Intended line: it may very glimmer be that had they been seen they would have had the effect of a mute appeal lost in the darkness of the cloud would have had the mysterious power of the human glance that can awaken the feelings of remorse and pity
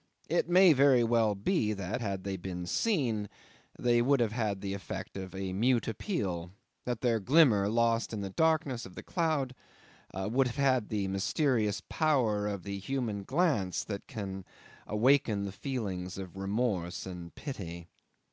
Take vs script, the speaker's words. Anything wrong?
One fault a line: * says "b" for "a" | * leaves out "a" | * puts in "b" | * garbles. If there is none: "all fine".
* says "well" for "glimmer"
* puts in "that their glimmer"